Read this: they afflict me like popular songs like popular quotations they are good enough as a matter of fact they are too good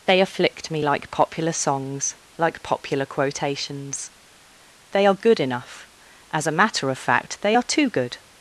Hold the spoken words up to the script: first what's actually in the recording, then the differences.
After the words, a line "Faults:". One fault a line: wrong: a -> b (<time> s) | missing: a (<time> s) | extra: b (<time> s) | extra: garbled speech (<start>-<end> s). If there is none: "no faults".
they afflict me like popular songs like popular quotations they are good enough as a matter of fact they are too good
Faults:
no faults